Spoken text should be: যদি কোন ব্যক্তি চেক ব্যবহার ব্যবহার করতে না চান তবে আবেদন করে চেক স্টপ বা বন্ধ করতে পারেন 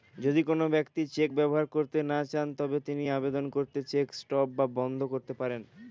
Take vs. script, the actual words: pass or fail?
fail